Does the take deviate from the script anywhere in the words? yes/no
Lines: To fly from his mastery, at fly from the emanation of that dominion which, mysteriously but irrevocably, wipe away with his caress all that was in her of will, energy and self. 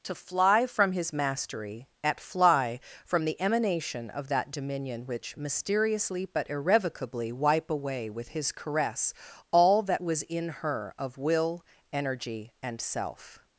no